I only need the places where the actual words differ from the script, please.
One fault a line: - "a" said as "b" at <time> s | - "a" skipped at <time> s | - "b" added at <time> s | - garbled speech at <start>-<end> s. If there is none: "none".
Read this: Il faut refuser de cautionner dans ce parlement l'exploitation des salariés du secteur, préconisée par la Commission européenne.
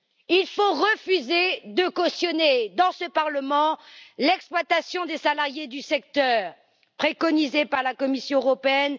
none